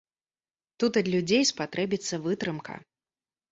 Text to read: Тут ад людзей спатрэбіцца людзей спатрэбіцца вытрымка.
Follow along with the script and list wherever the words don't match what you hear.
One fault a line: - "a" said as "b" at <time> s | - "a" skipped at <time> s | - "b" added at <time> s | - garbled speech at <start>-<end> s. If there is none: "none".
- "людзей спатрэбіцца" skipped at 2.2 s